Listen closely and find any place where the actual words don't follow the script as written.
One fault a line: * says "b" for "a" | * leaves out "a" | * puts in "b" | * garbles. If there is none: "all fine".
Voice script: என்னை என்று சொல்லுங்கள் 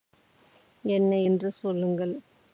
all fine